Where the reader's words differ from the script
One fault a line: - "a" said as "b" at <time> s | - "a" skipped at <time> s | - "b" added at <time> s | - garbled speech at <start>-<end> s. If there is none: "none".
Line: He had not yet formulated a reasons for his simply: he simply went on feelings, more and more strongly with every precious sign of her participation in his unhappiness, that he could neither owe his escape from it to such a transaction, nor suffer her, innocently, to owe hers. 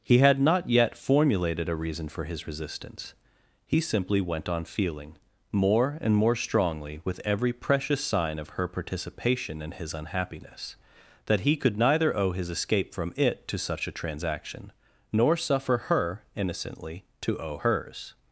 - "reasons" said as "reason" at 1.8 s
- "simply" said as "resistance" at 2.5 s
- "feelings" said as "feeling" at 4.6 s